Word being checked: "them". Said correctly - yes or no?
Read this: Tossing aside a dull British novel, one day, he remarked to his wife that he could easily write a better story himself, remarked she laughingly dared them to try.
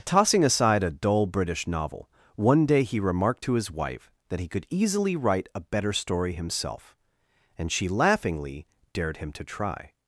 no